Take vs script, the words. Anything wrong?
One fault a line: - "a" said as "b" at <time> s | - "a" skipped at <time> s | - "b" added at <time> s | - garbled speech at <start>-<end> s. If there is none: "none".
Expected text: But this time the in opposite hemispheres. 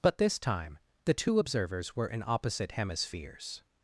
- "two observers were" added at 1.1 s